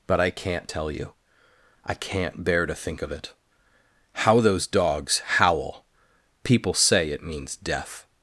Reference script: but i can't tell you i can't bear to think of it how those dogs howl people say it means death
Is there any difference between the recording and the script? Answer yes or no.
no